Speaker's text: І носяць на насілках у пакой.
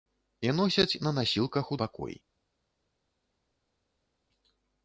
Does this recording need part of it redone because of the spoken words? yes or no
no